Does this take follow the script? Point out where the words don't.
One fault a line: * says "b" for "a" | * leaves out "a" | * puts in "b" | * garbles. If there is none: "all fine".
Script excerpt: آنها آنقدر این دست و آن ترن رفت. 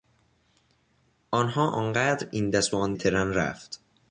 all fine